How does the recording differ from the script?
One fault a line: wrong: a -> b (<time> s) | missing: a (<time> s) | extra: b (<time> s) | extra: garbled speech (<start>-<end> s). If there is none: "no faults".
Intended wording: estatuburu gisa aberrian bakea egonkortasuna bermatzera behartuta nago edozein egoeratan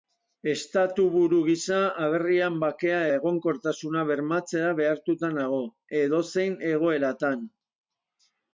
no faults